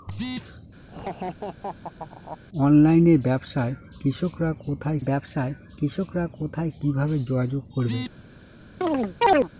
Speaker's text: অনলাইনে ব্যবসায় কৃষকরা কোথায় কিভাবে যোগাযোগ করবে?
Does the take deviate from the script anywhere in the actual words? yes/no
yes